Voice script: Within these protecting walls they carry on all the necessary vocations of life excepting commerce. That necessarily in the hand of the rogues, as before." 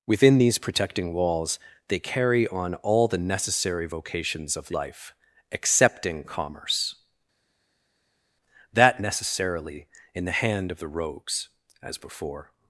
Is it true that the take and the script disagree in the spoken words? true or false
false